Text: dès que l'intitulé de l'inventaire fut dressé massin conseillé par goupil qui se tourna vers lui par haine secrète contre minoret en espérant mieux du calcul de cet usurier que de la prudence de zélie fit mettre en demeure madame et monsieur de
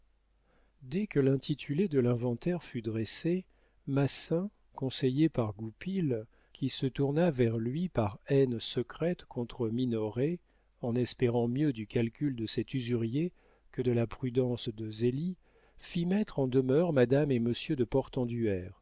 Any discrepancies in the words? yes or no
no